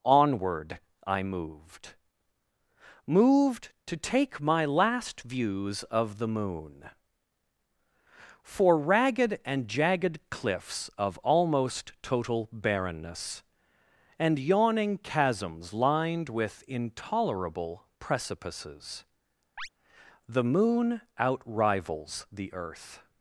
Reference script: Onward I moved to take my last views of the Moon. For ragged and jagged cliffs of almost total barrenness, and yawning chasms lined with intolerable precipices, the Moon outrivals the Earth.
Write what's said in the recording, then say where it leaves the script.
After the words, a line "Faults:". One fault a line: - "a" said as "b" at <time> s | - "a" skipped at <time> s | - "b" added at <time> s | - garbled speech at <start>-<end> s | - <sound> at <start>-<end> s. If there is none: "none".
Onward I moved moved to take my last views of the Moon. For ragged and jagged cliffs of almost total barrenness, and yawning chasms lined with intolerable precipices, the Moon outrivals the Earth.
Faults:
- "moved" added at 3.1 s
- chirp at 19.6-19.7 s